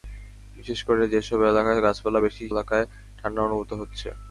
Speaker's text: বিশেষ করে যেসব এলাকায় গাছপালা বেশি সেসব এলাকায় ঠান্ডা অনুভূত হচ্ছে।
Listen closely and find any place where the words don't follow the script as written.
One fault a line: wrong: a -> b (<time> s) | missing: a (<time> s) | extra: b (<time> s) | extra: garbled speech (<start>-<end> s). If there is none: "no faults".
missing: সেসব (2.4 s)